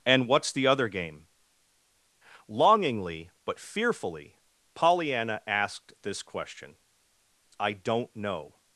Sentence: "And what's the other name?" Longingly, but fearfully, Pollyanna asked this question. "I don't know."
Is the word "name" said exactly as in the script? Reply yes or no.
no